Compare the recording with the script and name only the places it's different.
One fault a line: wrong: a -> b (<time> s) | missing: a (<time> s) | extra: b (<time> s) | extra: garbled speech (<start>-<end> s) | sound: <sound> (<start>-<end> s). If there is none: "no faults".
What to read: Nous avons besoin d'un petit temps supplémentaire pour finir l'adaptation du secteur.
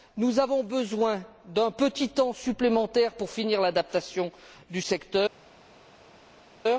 no faults